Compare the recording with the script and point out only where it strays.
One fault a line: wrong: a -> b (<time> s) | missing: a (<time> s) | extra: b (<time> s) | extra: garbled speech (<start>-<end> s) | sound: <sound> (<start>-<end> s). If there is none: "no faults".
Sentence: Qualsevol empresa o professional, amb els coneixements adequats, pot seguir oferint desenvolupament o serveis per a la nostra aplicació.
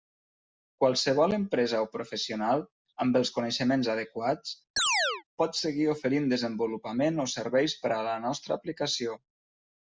sound: chirp (4.8-5.2 s)